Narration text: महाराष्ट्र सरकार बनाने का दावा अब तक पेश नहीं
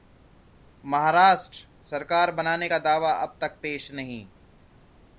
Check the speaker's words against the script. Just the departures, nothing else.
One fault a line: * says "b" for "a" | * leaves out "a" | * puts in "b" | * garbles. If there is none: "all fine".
all fine